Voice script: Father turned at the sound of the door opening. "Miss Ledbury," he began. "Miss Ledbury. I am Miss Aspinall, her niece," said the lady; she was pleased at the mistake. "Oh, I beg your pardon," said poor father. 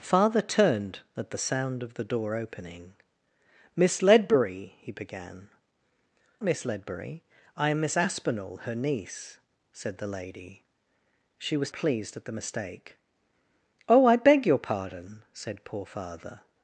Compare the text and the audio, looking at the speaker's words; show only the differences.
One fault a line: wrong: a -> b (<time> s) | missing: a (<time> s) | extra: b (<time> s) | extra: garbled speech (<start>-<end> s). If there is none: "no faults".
no faults